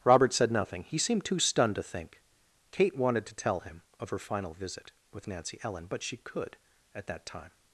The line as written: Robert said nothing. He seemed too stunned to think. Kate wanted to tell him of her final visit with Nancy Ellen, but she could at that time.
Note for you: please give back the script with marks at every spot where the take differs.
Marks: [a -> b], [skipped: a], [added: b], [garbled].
Robert said nothing. He seemed too stunned to think. Kate wanted to tell him of her final visit with Nancy Ellen, but she could at that time.